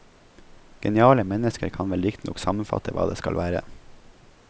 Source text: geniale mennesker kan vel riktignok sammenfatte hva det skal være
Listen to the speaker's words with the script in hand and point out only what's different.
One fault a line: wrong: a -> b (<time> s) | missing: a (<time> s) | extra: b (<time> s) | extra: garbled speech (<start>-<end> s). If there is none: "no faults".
no faults